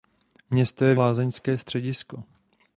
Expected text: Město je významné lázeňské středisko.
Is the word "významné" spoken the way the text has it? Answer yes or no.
no